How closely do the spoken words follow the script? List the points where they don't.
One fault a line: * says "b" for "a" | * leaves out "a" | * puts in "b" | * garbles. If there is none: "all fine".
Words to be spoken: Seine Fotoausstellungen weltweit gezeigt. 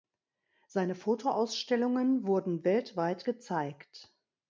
* puts in "wurden"